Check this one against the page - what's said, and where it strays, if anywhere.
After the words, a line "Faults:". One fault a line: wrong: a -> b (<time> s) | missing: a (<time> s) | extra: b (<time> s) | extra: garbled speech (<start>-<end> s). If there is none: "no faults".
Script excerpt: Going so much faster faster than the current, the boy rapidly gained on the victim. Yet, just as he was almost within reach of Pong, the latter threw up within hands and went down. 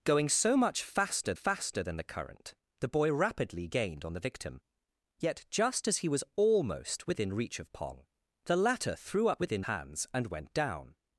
Going so much faster faster than the current, the boy rapidly gained on the victim. Yet, just as he was almost within reach of Pong, the latter threw up within hands and went down.
Faults:
no faults